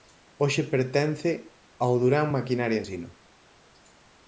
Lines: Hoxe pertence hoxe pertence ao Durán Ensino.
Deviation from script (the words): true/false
true